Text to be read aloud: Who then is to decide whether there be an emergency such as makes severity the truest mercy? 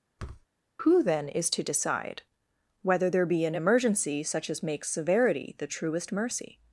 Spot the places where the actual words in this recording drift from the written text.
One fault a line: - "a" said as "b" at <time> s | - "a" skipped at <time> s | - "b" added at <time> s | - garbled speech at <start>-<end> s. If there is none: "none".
none